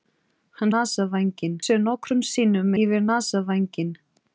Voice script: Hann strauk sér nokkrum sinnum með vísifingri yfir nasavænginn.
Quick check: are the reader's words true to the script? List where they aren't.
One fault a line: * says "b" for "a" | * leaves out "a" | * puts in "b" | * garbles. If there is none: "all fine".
* says "nasavænginn" for "strauk"
* leaves out "með vísifingri"